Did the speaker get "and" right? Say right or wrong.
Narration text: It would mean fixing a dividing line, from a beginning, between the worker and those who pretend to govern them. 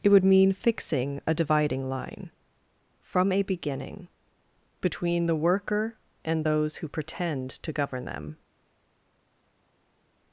right